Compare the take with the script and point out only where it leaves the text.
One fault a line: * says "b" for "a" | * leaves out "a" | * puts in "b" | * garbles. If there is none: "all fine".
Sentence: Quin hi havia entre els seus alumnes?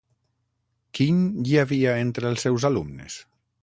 all fine